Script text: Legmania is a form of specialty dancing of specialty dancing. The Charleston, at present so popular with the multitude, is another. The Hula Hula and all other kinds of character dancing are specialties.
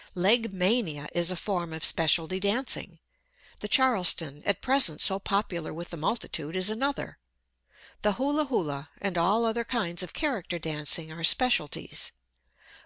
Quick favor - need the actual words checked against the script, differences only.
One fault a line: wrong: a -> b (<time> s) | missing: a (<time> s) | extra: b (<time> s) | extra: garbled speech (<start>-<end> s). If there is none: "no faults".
missing: of specialty dancing (3.0 s)